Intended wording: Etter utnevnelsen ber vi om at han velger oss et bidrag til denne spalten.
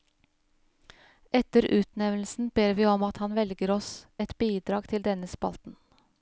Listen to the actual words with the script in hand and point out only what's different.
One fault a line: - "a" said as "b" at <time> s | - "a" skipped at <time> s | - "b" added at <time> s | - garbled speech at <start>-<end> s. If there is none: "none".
none